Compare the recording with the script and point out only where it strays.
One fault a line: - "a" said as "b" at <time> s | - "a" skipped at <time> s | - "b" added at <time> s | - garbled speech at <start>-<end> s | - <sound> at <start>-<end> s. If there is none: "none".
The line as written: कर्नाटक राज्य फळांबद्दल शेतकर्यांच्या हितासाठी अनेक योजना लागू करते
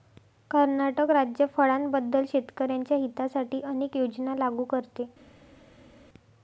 none